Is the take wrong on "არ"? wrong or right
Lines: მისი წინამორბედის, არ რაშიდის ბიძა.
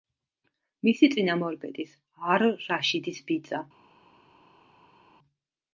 right